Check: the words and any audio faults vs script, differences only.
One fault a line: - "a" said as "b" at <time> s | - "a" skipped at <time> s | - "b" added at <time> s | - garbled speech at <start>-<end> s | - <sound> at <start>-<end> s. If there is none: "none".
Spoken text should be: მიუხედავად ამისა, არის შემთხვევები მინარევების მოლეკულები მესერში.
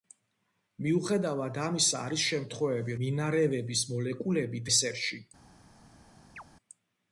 - chirp at 6.4-6.4 s